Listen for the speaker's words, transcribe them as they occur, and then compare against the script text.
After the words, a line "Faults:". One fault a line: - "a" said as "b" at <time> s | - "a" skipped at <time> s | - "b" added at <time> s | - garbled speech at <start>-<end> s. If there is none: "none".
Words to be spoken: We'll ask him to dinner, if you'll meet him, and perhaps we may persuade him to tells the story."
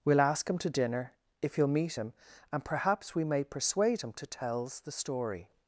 We'll ask him to dinner, if you'll meet him, and perhaps we may persuade him to tells the story."
Faults:
none